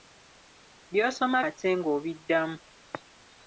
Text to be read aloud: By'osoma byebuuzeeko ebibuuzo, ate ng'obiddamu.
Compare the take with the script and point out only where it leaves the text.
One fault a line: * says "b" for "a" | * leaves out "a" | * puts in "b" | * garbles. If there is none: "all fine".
* leaves out "byebuuzeeko ebibuuzo"